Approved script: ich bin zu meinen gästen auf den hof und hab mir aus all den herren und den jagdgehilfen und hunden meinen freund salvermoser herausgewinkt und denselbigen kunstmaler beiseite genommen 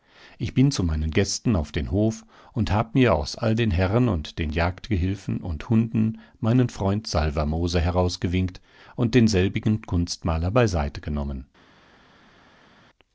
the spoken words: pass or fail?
pass